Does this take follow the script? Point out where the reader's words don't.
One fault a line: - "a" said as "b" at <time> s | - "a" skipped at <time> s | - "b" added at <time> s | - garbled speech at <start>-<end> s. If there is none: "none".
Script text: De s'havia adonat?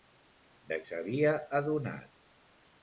none